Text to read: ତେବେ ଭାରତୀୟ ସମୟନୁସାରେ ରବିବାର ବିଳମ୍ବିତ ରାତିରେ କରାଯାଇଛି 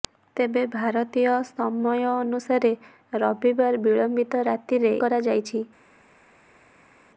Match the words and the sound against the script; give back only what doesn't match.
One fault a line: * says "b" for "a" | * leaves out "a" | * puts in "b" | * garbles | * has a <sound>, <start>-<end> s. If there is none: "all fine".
all fine